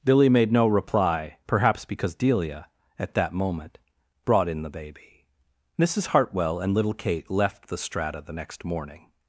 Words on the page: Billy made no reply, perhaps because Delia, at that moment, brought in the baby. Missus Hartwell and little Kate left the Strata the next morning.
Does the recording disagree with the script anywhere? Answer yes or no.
no